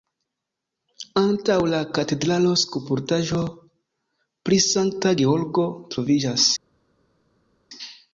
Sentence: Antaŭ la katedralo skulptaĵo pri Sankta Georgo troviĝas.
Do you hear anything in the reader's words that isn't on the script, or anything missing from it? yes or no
no